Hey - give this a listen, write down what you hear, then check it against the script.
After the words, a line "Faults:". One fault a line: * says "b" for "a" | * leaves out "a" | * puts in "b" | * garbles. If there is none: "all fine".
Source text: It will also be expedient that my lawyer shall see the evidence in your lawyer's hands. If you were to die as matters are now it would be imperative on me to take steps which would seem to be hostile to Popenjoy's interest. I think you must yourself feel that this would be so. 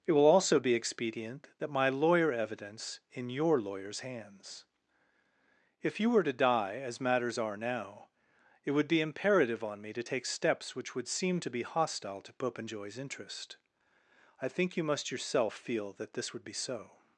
It will also be expedient that my lawyer evidence in your lawyer's hands. If you were to die as matters are now it would be imperative on me to take steps which would seem to be hostile to Popenjoy's interest. I think you must yourself feel that this would be so.
Faults:
* leaves out "shall see the"